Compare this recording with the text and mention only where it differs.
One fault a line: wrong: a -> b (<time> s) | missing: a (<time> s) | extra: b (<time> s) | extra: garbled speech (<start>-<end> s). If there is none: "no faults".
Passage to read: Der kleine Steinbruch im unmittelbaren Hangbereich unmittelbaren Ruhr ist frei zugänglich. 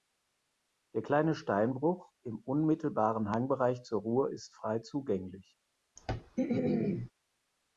wrong: unmittelbaren -> zur (3.8 s)